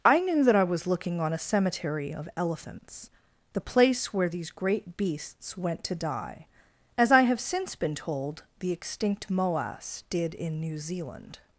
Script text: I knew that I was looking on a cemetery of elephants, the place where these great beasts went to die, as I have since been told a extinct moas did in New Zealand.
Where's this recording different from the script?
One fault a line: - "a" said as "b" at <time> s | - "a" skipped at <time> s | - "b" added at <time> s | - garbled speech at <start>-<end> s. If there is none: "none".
- "a" said as "the" at 8.6 s